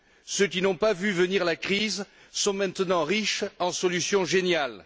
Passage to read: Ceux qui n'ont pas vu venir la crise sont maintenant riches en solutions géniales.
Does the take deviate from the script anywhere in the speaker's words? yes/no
no